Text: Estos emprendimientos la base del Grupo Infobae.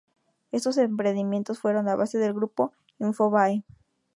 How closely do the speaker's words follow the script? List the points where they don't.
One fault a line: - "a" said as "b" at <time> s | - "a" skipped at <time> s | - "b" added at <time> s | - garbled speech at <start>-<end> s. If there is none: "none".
- "fueron" added at 1.6 s